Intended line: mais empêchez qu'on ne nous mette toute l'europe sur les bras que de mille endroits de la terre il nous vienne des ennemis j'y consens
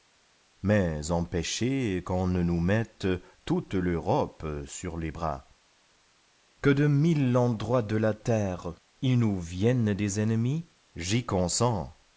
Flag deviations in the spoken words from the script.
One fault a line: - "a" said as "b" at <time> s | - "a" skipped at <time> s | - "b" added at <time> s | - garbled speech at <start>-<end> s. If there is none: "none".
none